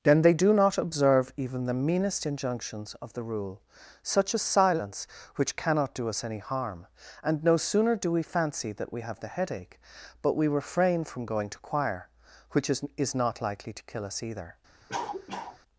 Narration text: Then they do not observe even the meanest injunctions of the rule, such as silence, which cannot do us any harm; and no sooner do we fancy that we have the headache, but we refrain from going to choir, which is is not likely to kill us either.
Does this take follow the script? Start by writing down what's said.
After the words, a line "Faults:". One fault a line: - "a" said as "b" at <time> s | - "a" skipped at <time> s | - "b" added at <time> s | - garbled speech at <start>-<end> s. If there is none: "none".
Then they do not observe even the meanest injunctions of the rule, such as silence, which cannot do us any harm; and no sooner do we fancy that we have the headache, but we refrain from going to choir, which is is not likely to kill us either.
Faults:
none